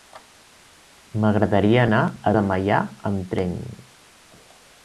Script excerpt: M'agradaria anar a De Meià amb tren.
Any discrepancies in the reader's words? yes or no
no